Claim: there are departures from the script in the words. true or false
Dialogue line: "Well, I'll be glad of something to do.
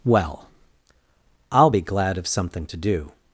false